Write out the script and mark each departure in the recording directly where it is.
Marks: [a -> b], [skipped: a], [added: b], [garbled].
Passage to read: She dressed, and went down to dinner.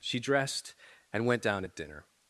She dressed, and went down [to -> at] dinner.